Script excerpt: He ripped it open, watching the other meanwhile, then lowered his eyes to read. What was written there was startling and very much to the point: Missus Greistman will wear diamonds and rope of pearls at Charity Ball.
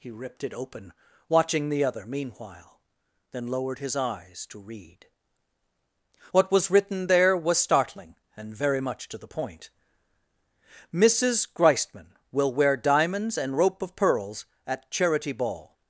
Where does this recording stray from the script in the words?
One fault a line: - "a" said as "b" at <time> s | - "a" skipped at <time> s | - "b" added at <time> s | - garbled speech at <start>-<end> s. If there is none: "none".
none